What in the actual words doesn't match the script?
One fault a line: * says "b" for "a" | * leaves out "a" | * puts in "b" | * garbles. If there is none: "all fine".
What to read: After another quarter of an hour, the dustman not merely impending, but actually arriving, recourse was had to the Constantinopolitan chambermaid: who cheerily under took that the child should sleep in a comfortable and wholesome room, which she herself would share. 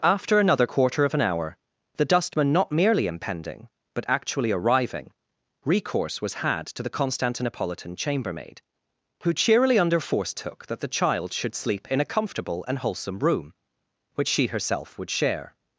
* puts in "force"